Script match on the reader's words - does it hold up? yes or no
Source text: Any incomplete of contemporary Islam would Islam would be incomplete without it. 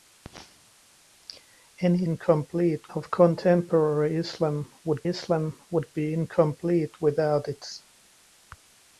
yes